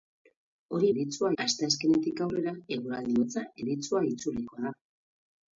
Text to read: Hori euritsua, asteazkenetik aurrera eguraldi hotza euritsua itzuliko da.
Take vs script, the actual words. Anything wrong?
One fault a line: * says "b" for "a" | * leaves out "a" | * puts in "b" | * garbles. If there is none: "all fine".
all fine